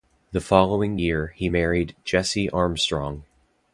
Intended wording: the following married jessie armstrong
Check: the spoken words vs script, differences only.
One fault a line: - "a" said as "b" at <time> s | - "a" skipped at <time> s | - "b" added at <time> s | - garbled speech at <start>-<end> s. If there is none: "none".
- "year he" added at 0.9 s